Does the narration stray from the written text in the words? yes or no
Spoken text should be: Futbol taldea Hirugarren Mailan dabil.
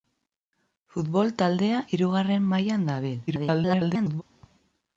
yes